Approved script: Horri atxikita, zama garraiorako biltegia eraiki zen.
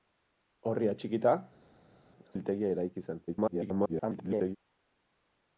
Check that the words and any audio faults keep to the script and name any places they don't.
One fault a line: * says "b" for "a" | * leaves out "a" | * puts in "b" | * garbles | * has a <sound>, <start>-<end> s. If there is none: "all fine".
* leaves out "zama garraiorako"
* garbles